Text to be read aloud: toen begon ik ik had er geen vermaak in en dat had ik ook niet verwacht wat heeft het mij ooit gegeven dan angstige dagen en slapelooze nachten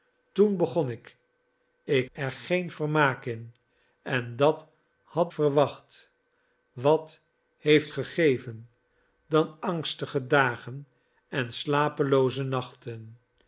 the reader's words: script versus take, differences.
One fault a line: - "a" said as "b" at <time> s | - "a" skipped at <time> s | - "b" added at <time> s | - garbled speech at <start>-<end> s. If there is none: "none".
- "had" skipped at 2.1 s
- "ik ook niet" skipped at 5.3 s
- "het mij ooit" skipped at 7.9 s